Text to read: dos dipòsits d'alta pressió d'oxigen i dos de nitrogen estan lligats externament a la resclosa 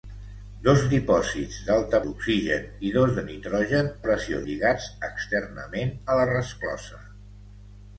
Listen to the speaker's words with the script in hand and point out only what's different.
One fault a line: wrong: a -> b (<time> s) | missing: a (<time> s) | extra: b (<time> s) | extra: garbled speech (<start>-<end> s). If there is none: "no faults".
missing: pressió (2.0 s)
wrong: estan -> pressió (4.1 s)